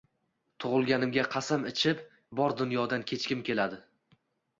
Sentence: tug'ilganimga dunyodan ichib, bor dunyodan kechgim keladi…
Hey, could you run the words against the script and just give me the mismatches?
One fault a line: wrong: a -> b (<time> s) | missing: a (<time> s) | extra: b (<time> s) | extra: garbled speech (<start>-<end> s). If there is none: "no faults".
wrong: dunyodan -> qasam (1.4 s)